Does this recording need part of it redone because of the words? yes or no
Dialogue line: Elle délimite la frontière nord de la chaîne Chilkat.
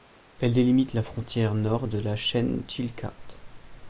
no